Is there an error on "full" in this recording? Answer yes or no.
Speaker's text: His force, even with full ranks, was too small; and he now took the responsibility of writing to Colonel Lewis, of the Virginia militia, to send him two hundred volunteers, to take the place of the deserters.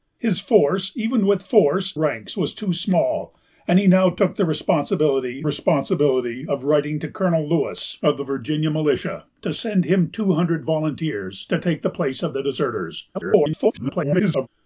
yes